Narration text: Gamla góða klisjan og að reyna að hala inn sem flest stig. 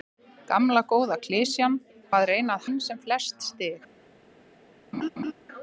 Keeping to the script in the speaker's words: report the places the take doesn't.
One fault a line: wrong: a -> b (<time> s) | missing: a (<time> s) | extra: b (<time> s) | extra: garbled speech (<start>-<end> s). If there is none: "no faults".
missing: og (1.8 s)
missing: hala (2.7 s)